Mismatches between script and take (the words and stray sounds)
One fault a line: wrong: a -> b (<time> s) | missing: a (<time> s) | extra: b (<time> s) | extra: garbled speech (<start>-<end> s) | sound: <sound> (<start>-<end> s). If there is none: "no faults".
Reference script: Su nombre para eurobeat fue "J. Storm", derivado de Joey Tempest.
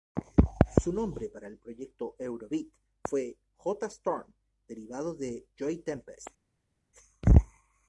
extra: el proyecto (1.5 s)